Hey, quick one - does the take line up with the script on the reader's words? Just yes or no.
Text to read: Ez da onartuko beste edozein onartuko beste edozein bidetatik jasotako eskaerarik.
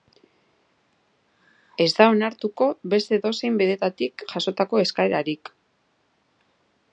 no